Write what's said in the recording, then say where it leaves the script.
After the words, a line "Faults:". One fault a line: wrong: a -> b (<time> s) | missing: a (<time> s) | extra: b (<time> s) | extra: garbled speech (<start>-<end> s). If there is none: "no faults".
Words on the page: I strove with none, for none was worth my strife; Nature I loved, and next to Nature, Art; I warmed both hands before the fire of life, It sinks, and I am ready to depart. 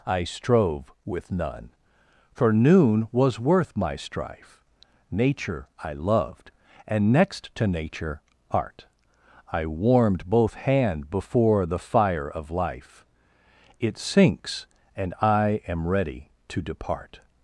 I strove with none, for noon was worth my strife; Nature I loved, and next to Nature, Art; I warmed both hand before the fire of life, It sinks, and I am ready to depart.
Faults:
wrong: none -> noon (2.5 s)
wrong: hands -> hand (10.6 s)